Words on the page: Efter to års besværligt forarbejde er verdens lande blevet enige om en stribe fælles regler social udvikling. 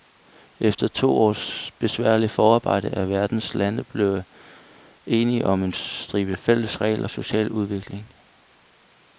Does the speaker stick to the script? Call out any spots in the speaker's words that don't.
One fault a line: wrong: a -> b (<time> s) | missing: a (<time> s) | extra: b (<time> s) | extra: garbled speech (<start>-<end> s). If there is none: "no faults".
no faults